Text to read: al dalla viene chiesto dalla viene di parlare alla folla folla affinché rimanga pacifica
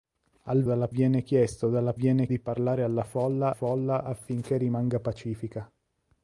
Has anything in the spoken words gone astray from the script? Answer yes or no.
no